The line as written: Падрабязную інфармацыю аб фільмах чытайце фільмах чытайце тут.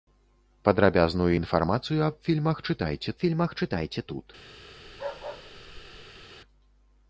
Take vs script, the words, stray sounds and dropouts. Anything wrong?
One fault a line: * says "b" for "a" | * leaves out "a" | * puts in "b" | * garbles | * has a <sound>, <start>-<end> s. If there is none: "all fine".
* has a bark, 4.9-6.3 s